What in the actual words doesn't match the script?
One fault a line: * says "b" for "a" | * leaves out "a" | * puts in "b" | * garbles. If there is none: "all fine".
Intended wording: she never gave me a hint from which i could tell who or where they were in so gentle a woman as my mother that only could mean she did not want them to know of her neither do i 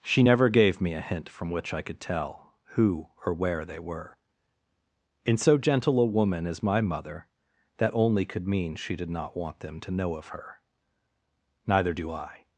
all fine